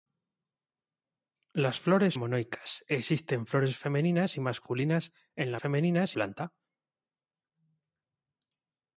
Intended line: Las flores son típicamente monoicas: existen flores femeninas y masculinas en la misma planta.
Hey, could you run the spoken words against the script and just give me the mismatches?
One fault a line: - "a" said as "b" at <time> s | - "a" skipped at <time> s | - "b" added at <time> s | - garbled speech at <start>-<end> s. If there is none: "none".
- "son típicamente" skipped at 2.2 s
- "misma" said as "femeninas" at 5.5 s